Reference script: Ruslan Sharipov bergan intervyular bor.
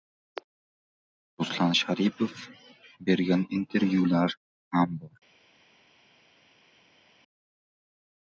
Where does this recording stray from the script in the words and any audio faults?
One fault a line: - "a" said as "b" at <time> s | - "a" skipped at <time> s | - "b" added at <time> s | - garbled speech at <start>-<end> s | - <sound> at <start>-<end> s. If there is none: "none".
- "ham" added at 4.8 s